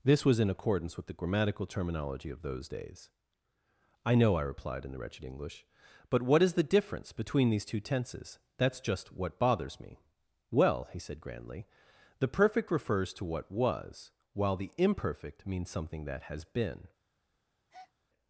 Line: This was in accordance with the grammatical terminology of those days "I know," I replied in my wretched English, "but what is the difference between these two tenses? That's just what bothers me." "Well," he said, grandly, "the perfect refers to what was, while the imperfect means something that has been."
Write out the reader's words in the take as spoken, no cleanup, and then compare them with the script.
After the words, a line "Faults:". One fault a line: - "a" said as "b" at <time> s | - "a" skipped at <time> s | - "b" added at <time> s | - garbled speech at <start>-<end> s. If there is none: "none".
This was in accordance with the grammatical terminology of those days "I know," I replied in the wretched English, "but what is the difference between these two tenses? That's just what bothers me." "Well," he said, grandly, "the perfect refers to what was, while the imperfect means something that has been."
Faults:
- "my" said as "the" at 4.9 s